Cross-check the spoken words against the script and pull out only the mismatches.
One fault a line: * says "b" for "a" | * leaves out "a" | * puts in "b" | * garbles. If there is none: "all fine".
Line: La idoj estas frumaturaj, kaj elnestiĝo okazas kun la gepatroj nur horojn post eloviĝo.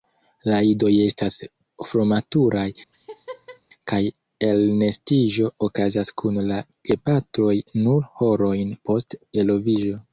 all fine